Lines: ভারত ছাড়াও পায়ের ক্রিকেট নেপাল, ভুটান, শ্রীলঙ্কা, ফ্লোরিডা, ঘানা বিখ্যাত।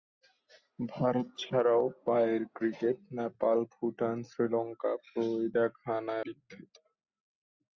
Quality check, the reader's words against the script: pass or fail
pass